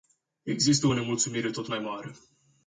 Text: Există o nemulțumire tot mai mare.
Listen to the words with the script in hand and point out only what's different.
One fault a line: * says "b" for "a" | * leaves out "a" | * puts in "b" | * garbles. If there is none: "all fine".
all fine